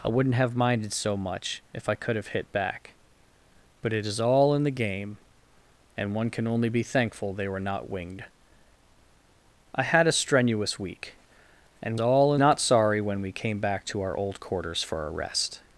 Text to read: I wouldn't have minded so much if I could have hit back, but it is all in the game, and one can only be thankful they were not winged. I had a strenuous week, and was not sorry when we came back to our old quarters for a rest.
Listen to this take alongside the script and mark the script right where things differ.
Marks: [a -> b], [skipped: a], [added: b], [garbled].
I wouldn't have minded so much if I could have hit back, but it is all in the game, and one can only be thankful they were not winged. I had a strenuous week, and [was -> all] not sorry when we came back to our old quarters for a rest.